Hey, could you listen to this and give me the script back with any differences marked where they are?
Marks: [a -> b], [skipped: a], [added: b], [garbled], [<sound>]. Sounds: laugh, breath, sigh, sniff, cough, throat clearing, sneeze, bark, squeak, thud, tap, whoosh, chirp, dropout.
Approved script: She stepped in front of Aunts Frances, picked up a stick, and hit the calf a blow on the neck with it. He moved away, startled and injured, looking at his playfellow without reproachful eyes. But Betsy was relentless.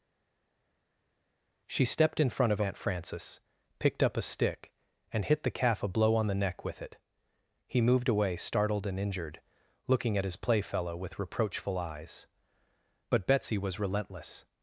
She stepped in front of [Aunts -> Aunt] Frances, picked up a stick, and hit the calf a blow on the neck with it. He moved away, startled and injured, looking at his playfellow [without -> with] reproachful eyes. But Betsy was relentless.